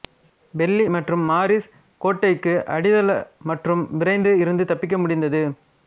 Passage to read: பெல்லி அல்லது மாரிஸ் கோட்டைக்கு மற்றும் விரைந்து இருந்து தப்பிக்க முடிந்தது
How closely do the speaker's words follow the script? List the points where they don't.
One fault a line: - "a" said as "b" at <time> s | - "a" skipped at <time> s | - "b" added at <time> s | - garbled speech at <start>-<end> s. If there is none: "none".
- "அல்லது" said as "மற்றும்" at 0.9 s
- "அடித்தள" added at 2.7 s